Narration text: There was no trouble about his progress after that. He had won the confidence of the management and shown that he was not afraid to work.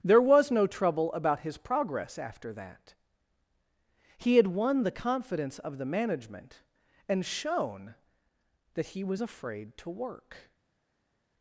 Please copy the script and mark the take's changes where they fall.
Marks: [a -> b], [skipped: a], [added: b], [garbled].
There was no trouble about his progress after that. He had won the confidence of the management and shown that he was [skipped: not] afraid to work.